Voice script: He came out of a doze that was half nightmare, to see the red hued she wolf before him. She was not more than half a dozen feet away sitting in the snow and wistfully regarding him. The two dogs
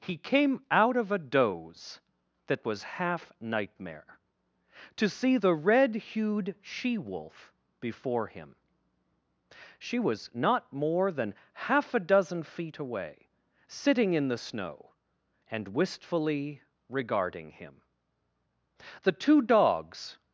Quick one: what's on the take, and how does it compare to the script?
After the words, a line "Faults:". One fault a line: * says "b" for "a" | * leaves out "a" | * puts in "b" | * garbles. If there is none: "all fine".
He came out of a doze that was half nightmare, to see the red hued she wolf before him. She was not more than half a dozen feet away sitting in the snow and wistfully regarding him. The two dogs
Faults:
all fine